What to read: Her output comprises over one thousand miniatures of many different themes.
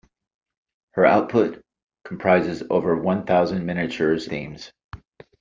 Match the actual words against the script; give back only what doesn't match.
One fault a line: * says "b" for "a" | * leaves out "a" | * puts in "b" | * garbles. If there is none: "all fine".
* leaves out "of many different"